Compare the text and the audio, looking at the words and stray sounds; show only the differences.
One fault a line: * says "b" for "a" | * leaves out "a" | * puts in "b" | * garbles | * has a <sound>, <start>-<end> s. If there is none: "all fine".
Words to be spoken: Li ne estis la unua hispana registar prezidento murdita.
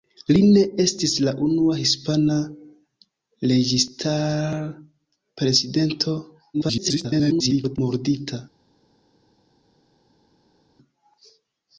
* garbles